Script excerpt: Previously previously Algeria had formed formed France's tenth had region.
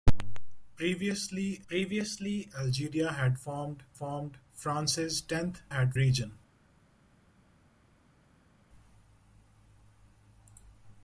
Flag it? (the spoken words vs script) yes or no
no